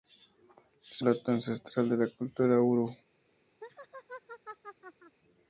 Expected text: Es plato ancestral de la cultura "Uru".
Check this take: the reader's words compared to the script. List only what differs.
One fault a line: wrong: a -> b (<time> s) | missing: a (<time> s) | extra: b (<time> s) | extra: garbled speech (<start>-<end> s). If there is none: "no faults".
no faults